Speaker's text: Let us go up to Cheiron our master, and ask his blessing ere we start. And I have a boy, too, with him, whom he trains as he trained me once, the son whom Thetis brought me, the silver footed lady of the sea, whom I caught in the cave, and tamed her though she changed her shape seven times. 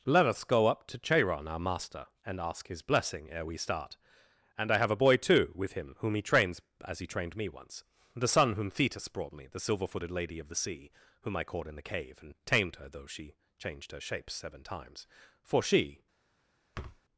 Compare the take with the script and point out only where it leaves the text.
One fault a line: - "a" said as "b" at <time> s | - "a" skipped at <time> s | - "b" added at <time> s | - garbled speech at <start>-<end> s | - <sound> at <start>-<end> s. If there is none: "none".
- "For she" added at 15.4 s
- thud at 16.7-17.0 s